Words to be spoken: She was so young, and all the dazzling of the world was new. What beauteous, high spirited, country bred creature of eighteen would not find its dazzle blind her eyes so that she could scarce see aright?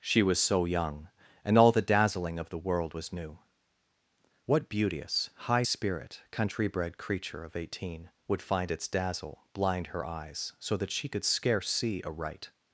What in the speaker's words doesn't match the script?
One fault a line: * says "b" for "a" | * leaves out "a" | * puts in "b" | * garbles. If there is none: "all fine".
* says "spirit" for "spirited"
* leaves out "not"